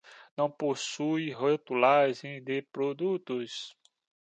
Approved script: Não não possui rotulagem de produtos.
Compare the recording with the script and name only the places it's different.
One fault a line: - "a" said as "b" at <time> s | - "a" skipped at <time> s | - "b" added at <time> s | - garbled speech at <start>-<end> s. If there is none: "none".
- "não" skipped at 0.5 s